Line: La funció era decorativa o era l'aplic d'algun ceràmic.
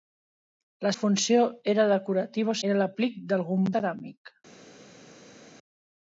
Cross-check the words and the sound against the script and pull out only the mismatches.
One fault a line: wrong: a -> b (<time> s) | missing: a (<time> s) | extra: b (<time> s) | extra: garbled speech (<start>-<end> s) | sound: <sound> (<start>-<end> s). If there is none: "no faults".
no faults